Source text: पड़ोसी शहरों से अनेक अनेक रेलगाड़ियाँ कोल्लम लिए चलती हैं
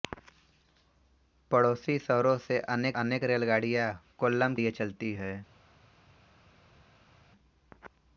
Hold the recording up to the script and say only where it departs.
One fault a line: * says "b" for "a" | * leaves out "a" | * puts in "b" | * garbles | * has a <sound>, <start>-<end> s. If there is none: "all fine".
all fine